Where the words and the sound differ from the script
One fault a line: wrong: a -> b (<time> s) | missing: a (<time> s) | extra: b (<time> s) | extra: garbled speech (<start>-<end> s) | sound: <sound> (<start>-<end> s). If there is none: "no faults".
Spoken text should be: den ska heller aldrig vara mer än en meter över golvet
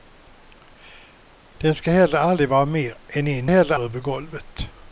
wrong: meter -> heller (3.5 s)